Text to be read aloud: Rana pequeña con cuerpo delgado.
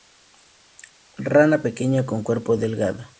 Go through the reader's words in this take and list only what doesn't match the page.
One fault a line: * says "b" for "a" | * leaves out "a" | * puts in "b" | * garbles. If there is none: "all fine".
all fine